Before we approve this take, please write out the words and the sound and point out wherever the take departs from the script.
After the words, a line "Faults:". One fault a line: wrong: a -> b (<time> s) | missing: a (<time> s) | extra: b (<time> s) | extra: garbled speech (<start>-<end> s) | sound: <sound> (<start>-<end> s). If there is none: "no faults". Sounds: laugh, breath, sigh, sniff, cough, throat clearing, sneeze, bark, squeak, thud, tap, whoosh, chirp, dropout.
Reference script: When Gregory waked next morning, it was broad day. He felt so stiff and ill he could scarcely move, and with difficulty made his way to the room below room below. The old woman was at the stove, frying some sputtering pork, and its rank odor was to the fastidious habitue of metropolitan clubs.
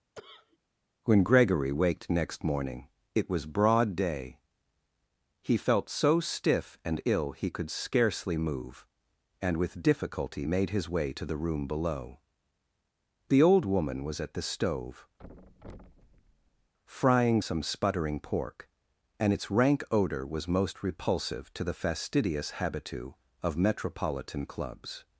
When Gregory waked next morning, it was broad day. He felt so stiff and ill he could scarcely move, and with difficulty made his way to the room below. The old woman was at the stove, frying some sputtering pork, and its rank odor was most repulsive to the fastidious habitue of metropolitan clubs.
Faults:
sound: cough (0.2-0.6 s)
missing: room below (12.2 s)
sound: thud (15.2-16.7 s)
extra: most repulsive (20.5 s)